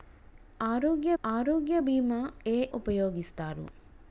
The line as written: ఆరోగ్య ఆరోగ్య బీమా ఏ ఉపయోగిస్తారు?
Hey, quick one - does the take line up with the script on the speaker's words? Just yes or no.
yes